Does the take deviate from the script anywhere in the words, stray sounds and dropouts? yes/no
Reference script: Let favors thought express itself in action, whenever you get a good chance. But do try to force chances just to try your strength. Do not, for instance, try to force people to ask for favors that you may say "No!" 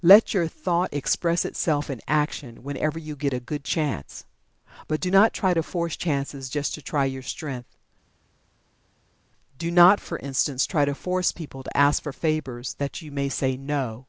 yes